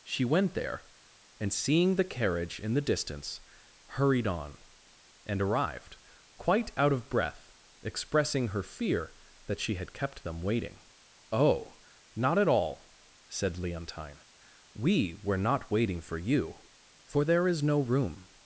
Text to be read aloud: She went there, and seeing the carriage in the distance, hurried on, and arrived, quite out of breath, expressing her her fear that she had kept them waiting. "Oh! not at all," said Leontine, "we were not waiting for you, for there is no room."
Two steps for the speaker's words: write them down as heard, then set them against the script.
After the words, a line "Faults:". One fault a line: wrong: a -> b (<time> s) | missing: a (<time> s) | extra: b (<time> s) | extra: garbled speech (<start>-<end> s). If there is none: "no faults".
She went there, and seeing the carriage in the distance, hurried on, and arrived, quite out of breath, expressing her fear that she had kept them waiting. "Oh! not at all," said Leontine, "we were not waiting for you, for there is no room."
Faults:
missing: her (8.6 s)